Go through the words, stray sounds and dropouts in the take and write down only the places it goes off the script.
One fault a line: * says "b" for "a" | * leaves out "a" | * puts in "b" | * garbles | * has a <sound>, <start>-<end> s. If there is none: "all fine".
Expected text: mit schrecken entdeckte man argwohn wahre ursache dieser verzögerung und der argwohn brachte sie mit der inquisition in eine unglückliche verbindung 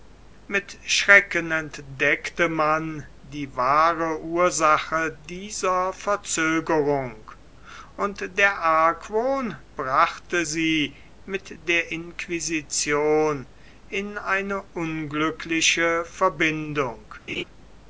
* says "die" for "argwohn"
* has a laugh, 17.3-17.4 s